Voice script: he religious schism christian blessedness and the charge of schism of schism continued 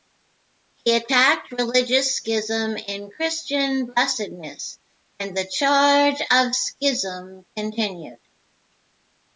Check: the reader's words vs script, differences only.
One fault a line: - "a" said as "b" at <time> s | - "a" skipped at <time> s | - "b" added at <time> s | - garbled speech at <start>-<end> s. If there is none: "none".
- "attacked" added at 0.9 s
- "in" added at 2.8 s
- "of schism" skipped at 7.5 s